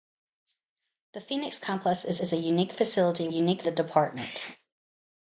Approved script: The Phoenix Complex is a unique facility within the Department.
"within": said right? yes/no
no